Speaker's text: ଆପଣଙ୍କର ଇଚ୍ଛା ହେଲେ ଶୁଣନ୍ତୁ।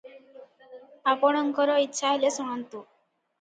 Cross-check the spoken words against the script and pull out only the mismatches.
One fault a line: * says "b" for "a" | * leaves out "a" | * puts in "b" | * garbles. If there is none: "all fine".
all fine